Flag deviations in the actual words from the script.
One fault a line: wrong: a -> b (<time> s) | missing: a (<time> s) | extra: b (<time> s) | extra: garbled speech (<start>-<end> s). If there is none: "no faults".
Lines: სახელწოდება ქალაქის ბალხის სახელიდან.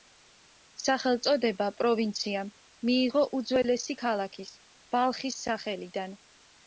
extra: პროვინციამ მიიღო უძველესი (1.8 s)